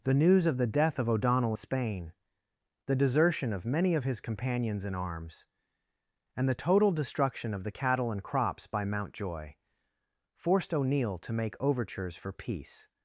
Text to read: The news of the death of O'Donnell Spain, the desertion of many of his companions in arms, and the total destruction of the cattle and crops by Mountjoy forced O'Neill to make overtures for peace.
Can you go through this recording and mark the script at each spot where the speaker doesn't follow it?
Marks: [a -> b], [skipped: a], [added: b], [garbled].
The news of the death of O'Donnell Spain, the desertion of many of his companions in arms, and the total destruction of the cattle and crops by Mountjoy forced O'Neill to make overtures for peace.